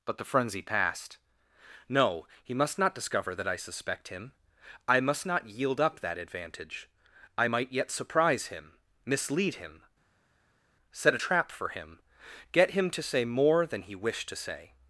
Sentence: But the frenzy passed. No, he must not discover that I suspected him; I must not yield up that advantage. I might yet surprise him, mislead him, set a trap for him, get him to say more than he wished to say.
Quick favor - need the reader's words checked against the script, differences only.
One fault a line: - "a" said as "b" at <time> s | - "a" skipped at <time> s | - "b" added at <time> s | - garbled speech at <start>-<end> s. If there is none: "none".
- "suspected" said as "suspect" at 3.5 s